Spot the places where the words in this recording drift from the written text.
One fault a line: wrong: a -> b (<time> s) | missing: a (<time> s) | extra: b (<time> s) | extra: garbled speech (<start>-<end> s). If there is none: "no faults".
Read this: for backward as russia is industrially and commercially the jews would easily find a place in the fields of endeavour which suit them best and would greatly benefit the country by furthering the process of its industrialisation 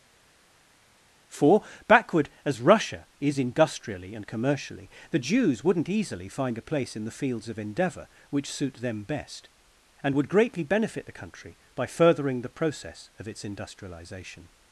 wrong: would -> wouldn't (5.6 s)